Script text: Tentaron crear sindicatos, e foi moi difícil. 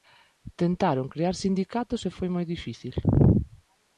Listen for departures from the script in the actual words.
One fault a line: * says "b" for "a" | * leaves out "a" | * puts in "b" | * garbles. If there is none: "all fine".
all fine